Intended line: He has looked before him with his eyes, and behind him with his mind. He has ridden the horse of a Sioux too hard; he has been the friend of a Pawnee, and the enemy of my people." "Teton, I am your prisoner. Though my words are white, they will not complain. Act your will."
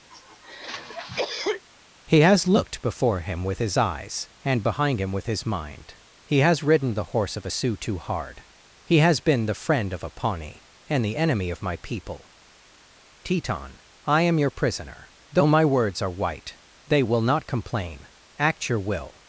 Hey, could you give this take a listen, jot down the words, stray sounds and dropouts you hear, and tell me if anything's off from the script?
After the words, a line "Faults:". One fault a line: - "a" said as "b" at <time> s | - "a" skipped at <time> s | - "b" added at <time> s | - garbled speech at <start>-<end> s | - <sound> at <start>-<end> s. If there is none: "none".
He has looked before him with his eyes, and behind him with his mind. He has ridden the horse of a Sioux too hard; he has been the friend of a Pawnee, and the enemy of my people." "Teton, I am your prisoner. Though my words are white, they will not complain. Act your will."
Faults:
- cough at 0.1-1.6 s